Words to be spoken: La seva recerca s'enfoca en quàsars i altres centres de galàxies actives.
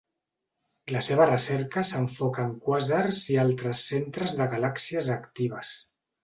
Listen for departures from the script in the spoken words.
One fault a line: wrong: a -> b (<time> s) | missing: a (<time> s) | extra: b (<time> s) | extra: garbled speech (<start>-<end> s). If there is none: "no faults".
no faults